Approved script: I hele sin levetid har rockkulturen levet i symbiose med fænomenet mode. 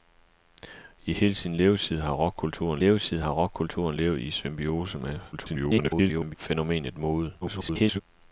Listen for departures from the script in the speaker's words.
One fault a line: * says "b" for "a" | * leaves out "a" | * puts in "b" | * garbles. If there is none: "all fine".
* puts in "levetid har rockkulturen"
* garbles
* garbles